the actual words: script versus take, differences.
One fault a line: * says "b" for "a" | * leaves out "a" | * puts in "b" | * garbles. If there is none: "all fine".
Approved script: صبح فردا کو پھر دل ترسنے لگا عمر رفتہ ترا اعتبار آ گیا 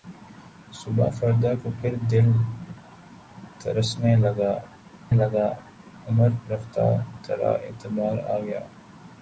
* puts in "لگا"